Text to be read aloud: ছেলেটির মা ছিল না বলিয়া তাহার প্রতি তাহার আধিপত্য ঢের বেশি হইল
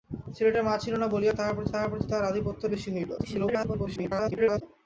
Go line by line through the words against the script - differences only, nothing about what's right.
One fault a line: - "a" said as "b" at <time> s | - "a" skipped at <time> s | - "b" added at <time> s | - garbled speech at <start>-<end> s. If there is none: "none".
- "প্রতি তাহার" added at 1.9 s
- "ঢের" skipped at 2.6 s
- garbled speech at 3.2-4.6 s